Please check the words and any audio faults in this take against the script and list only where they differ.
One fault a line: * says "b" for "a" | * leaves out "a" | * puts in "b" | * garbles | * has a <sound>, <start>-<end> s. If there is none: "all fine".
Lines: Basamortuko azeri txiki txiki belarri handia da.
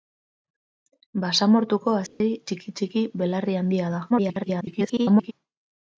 * has a dropout, 2.1-2.2 s
* garbles